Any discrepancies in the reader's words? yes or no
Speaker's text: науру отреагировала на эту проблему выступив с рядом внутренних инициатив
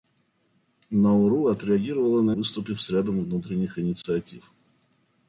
yes